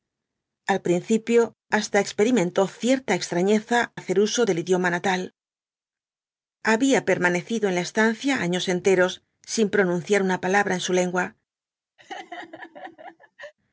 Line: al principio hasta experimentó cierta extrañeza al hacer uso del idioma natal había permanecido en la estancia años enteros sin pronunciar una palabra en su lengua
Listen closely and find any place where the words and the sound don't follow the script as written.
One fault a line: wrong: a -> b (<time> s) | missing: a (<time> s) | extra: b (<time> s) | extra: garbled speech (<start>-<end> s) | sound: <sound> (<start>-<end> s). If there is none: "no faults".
missing: al (3.9 s)
sound: laugh (12.0-13.5 s)